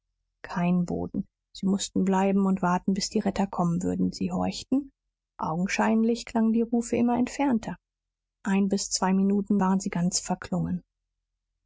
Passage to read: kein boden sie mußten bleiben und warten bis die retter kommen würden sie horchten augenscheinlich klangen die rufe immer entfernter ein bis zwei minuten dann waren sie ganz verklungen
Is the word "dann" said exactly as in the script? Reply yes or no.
no